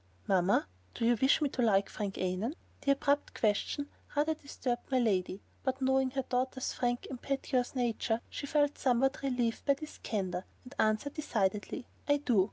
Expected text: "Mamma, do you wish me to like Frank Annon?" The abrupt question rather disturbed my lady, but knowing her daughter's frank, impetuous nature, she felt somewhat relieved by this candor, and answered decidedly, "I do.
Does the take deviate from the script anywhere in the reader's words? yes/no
no